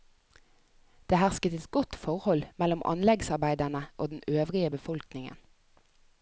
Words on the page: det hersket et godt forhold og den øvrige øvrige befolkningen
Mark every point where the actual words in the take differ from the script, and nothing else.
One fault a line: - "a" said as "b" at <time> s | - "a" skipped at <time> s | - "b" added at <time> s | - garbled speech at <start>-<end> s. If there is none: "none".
- "mellom anleggsarbeiderne" added at 2.6 s
- "øvrige" skipped at 4.7 s